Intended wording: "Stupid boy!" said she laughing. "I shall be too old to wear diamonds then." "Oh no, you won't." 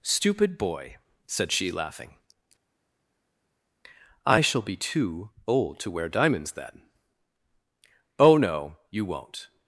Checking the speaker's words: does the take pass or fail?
pass